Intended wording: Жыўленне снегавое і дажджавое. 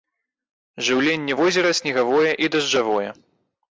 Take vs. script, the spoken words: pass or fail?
fail